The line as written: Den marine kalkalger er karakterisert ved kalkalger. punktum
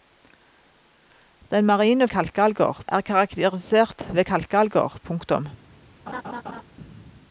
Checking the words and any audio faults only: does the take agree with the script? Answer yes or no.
no